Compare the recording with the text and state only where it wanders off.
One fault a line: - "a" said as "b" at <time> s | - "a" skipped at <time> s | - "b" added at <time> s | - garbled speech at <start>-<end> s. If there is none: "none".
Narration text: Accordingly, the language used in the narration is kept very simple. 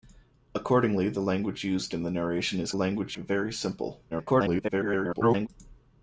- "kept" said as "language" at 2.7 s
- garbled speech at 4.1-5.5 s